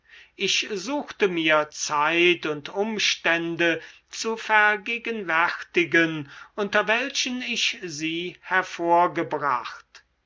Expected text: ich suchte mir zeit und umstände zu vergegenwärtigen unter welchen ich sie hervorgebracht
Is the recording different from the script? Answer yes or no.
no